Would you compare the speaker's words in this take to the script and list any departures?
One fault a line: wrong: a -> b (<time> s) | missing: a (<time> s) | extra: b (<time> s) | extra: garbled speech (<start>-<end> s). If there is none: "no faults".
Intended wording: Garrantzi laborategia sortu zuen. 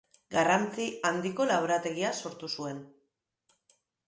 extra: handiko (1.1 s)